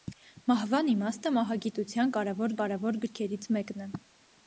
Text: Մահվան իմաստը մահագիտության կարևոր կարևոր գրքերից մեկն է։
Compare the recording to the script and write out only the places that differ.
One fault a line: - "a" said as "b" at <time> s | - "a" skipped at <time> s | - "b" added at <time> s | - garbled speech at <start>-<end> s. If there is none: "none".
none